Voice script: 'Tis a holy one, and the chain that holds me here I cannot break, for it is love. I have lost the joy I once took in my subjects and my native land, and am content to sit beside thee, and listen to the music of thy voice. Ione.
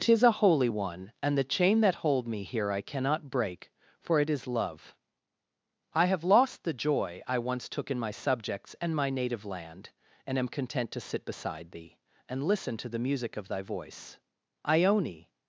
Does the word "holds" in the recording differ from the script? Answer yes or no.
yes